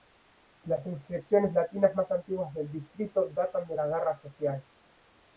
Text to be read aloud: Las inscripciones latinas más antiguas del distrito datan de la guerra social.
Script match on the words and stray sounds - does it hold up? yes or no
yes